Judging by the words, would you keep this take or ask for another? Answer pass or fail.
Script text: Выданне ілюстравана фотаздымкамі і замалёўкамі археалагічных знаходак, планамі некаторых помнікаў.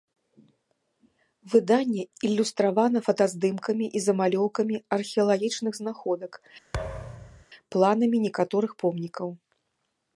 pass